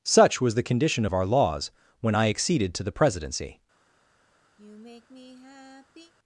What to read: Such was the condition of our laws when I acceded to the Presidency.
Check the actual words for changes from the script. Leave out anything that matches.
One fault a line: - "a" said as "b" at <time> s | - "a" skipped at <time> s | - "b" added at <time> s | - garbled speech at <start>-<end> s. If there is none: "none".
none